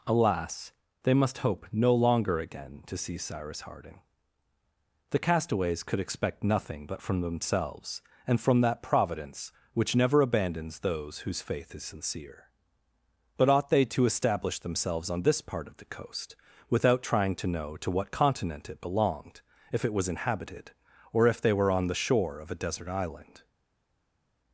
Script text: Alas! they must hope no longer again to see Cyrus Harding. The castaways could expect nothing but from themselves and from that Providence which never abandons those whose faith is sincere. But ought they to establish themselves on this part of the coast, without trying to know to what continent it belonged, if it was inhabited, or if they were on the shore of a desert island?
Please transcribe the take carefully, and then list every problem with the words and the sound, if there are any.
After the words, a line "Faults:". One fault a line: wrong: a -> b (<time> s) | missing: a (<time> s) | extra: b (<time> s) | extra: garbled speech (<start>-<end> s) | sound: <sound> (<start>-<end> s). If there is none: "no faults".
Alas! they must hope no longer again to see Cyrus Harding. The castaways could expect nothing but from themselves and from that Providence which never abandons those whose faith is sincere. But ought they to establish themselves on this part of the coast, without trying to know to what continent it belonged, if it was inhabited, or if they were on the shore of a desert island?
Faults:
no faults